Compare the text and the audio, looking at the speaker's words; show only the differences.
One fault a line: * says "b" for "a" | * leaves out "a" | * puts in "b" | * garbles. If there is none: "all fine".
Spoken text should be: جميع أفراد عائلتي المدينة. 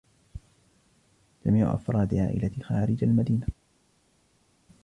* puts in "خارج"